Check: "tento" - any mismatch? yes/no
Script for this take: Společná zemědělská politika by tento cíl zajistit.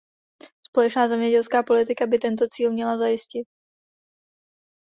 no